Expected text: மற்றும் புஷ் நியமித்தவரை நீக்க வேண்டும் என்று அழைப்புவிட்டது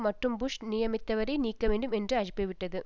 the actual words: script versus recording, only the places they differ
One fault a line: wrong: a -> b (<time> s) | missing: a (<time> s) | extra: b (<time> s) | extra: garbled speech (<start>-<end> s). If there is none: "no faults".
no faults